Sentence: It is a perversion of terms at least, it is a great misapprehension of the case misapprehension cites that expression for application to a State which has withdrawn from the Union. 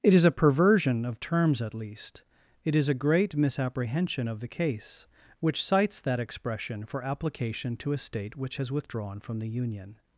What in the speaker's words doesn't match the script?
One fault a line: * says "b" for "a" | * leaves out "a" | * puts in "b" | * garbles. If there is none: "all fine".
* says "which" for "misapprehension"